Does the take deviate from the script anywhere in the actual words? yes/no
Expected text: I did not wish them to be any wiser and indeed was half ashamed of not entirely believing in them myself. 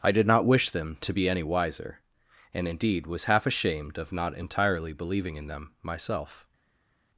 no